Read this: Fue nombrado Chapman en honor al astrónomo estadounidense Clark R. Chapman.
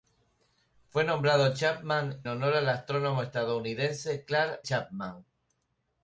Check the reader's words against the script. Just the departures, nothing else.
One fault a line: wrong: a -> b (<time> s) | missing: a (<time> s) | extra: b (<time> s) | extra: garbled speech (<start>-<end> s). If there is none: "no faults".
missing: en (2.2 s)
missing: R (4.6 s)